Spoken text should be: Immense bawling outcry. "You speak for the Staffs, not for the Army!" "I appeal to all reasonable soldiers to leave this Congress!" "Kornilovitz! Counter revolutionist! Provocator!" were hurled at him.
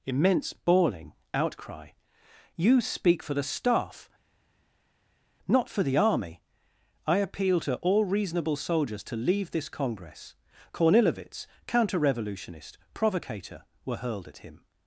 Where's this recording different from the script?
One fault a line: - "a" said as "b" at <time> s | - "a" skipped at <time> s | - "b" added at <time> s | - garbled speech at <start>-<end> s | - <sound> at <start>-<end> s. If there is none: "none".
- "Staffs" said as "Staff" at 3.4 s